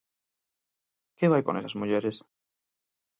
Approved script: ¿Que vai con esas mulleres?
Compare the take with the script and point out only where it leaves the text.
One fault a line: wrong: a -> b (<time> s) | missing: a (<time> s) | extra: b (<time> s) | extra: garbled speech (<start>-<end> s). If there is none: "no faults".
no faults